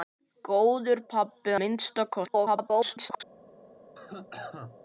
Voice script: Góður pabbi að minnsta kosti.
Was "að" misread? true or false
true